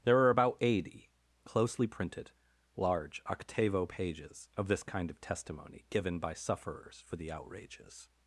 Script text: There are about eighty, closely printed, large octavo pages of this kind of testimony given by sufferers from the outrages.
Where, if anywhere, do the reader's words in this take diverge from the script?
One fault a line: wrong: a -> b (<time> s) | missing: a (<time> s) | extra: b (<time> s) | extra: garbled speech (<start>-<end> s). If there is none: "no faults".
wrong: from -> for (7.0 s)